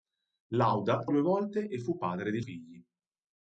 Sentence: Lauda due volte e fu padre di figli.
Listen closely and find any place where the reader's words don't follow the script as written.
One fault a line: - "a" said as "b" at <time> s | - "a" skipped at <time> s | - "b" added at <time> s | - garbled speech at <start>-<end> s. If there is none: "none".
none